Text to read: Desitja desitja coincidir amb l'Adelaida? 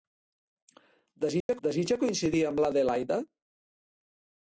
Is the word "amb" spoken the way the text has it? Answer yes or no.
yes